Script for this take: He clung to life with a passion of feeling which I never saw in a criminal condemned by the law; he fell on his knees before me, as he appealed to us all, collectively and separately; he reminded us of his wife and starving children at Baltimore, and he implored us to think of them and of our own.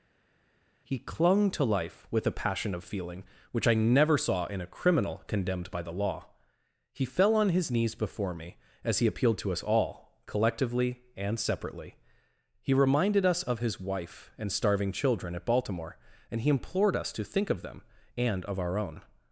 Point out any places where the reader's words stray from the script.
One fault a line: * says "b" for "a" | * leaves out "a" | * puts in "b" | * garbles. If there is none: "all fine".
all fine